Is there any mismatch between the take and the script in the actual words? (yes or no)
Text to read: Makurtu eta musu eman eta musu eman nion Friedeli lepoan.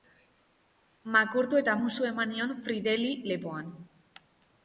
yes